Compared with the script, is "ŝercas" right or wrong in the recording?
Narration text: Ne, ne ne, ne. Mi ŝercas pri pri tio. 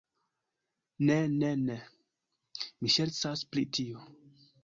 right